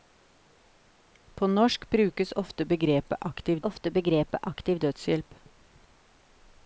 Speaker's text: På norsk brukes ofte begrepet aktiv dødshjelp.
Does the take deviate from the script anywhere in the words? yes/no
yes